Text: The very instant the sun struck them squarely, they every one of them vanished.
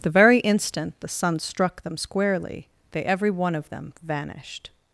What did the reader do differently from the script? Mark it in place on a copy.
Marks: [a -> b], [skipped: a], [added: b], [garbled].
The very instant the sun struck them squarely, they every one of them vanished.